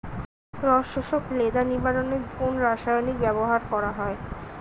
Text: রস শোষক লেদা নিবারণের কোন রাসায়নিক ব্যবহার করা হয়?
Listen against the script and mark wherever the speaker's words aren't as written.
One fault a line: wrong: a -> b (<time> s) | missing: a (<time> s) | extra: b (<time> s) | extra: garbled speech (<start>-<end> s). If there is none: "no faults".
no faults